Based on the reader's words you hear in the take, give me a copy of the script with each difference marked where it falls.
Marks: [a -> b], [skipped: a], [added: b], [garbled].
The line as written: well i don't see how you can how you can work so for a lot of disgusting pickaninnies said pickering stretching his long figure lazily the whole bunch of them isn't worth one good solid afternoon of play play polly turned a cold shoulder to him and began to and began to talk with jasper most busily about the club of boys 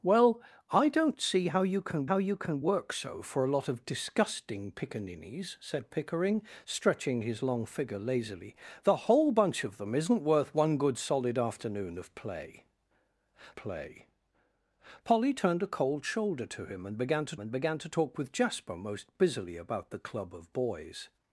well i don't see how you can how you can work so for a lot of disgusting pickaninnies said pickering stretching his long figure lazily the whole bunch of them isn't worth one good solid afternoon of play play polly turned a cold shoulder to him and began to and began to talk with jasper most busily about the club of boys